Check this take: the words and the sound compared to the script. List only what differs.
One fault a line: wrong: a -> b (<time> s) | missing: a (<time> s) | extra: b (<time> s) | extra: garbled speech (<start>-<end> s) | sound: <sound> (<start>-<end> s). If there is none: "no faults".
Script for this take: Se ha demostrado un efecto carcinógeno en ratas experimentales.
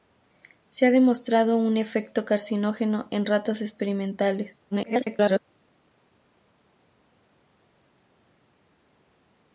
extra: garbled speech (4.7-5.4 s)